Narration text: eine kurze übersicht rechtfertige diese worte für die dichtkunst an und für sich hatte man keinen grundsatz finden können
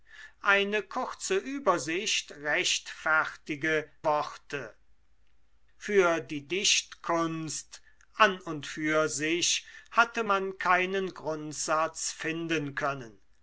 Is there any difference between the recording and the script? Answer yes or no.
yes